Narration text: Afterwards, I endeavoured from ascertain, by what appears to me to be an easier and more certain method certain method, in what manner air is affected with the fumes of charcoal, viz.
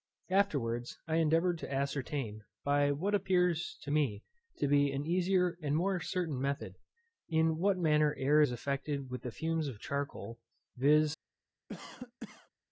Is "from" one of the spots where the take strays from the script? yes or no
yes